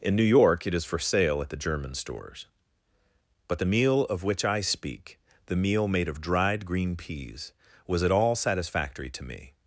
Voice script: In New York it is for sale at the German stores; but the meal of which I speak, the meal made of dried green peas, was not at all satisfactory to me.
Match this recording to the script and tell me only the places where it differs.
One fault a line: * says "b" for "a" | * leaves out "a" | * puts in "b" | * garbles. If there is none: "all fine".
* leaves out "not"